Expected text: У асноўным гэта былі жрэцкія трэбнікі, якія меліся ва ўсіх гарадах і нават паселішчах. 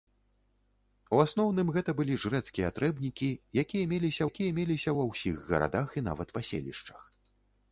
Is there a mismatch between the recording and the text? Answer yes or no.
yes